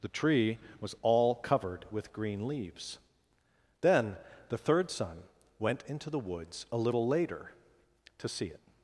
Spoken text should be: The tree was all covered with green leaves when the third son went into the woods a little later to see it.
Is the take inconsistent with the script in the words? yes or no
yes